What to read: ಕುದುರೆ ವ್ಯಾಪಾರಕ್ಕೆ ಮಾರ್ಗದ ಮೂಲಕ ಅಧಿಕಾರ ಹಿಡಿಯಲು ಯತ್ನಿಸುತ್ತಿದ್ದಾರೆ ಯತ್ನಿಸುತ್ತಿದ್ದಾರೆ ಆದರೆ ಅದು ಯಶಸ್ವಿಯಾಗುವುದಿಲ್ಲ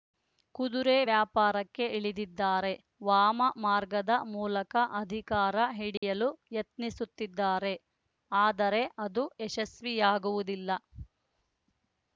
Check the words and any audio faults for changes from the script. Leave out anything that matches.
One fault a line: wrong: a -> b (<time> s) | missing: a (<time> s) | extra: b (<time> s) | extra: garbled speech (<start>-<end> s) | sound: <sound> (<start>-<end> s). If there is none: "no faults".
extra: ಇಳಿದಿದ್ದಾರೆ ವಾಮ (2.0 s)
sound: dropout (6.0-6.0 s)
missing: ಯತ್ನಿಸುತ್ತಿದ್ದಾರೆ (7.7 s)